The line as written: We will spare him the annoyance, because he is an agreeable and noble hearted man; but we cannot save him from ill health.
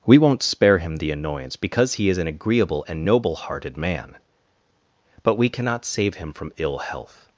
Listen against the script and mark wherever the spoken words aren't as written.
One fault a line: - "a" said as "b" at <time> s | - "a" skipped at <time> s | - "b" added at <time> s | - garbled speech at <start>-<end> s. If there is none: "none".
- "will" said as "won't" at 0.2 s